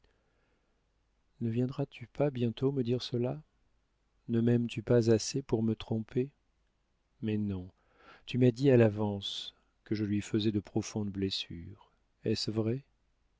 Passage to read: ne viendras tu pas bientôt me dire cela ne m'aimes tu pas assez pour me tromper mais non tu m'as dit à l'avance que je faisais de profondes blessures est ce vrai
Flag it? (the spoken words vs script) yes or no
yes